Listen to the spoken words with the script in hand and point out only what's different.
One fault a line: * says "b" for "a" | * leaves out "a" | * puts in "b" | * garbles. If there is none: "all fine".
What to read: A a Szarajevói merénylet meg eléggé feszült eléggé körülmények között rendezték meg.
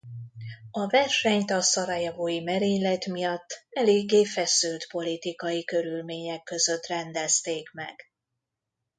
* puts in "versenyt"
* says "miatt" for "meg"
* says "politikai" for "eléggé"